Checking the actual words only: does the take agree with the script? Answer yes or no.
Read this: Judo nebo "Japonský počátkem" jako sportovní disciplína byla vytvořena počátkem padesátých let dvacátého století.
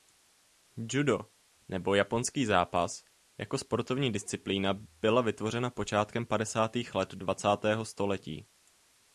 no